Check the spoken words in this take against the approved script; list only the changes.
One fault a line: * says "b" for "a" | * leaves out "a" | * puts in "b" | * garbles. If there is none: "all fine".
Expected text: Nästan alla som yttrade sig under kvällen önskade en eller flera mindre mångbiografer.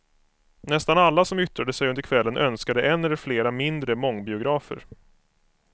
all fine